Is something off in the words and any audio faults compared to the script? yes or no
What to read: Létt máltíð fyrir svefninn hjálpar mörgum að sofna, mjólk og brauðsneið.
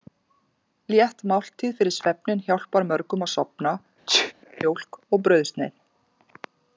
yes